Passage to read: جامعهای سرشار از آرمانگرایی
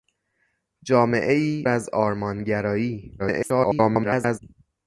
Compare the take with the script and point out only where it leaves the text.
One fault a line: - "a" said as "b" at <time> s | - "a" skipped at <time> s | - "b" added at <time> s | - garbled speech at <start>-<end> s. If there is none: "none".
- "سرشار" skipped at 1.7 s
- garbled speech at 3.2-4.4 s